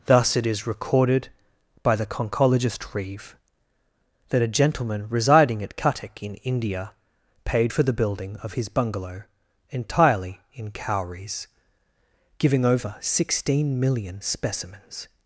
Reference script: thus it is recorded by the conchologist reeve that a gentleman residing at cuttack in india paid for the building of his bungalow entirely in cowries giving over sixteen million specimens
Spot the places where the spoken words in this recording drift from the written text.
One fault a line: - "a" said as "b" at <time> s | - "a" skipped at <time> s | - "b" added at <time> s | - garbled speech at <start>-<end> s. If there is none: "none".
none